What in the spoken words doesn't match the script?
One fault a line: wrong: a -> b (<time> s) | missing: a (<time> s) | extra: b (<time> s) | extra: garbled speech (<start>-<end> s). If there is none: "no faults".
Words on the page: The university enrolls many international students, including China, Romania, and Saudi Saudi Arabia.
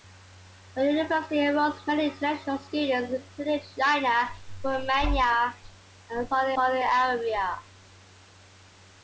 no faults